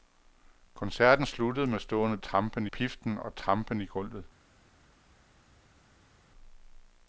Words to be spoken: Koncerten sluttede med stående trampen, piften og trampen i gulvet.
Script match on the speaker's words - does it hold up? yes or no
yes